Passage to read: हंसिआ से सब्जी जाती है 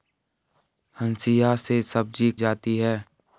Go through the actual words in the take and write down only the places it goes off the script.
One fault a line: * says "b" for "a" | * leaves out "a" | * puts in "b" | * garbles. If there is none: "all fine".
all fine